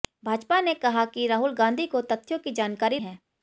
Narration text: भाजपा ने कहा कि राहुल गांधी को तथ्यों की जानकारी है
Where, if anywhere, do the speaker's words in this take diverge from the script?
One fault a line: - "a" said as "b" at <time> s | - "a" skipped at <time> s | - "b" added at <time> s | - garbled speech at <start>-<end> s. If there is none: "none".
none